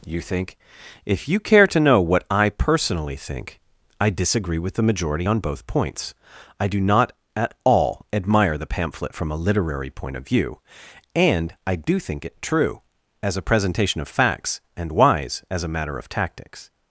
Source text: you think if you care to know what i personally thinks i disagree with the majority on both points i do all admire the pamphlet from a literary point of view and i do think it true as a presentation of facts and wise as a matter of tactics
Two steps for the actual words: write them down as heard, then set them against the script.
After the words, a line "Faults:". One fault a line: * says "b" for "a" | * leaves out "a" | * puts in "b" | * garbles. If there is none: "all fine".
you think if you care to know what i personally think i disagree with the majority on both points i do not at all admire the pamphlet from a literary point of view and i do think it true as a presentation of facts and wise as a matter of tactics
Faults:
* says "think" for "thinks"
* puts in "not at"